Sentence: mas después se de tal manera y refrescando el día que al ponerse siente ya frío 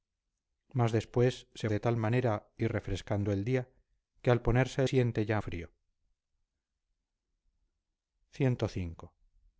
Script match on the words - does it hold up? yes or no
yes